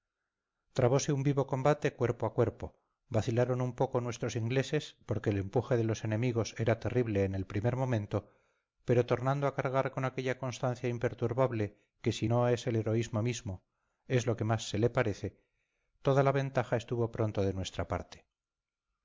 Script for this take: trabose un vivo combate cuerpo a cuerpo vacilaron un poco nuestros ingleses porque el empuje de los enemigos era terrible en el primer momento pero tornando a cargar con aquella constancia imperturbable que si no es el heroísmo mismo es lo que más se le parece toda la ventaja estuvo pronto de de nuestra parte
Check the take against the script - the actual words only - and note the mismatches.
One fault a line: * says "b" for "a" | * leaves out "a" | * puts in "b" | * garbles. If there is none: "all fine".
* leaves out "de"